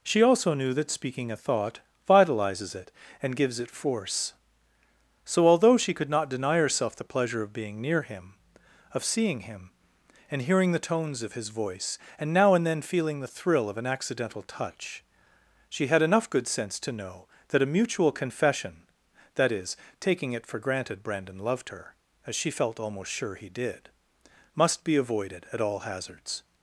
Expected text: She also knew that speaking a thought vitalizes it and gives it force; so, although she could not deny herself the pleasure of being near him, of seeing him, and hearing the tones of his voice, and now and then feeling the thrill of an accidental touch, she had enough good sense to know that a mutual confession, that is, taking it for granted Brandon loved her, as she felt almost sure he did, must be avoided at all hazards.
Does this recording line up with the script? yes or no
yes